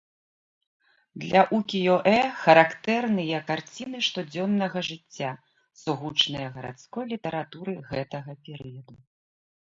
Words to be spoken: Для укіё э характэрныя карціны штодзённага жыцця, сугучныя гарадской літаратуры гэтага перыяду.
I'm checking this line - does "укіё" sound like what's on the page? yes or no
yes